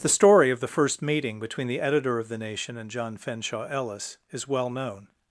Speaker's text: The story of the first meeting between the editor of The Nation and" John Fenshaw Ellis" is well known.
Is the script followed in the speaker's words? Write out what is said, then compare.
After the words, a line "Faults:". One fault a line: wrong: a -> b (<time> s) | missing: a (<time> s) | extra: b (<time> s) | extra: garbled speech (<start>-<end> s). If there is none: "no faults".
The story of the first meeting between the editor of The Nation and" John Fenshaw Ellis" is well known.
Faults:
no faults